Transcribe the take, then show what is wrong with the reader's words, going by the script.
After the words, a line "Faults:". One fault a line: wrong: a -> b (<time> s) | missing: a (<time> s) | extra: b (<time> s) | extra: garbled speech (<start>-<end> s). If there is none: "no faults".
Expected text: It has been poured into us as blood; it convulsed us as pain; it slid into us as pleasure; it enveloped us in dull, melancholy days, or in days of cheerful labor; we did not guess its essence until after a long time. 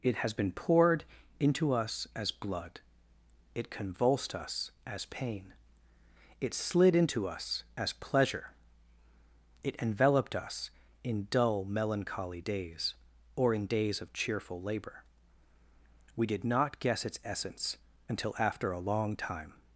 It has been poured into us as blood; it convulsed us as pain; it slid into us as pleasure; it enveloped us in dull, melancholy days, or in days of cheerful labor; we did not guess its essence until after a long time.
Faults:
no faults